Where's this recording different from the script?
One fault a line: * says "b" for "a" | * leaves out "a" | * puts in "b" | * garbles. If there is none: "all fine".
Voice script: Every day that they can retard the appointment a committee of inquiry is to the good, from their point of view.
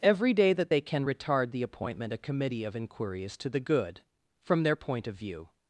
all fine